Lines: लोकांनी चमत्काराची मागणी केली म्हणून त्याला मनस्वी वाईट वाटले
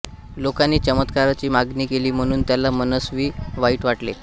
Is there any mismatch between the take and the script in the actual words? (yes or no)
no